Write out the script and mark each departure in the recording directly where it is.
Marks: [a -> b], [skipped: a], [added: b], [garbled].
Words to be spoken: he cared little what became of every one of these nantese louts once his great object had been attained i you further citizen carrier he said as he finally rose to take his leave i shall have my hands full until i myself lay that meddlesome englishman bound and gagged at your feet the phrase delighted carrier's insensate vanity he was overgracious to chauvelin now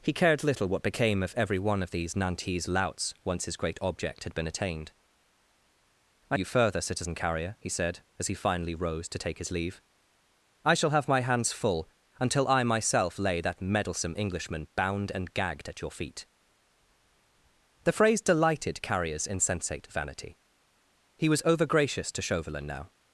he cared little what became of every one of these nantese louts once his great object had been attained i you further citizen carrier he said as he finally rose to take his leave i shall have my hands full until i myself lay that meddlesome englishman bound and gagged at your feet the phrase delighted carrier's insensate vanity he was overgracious to chauvelin now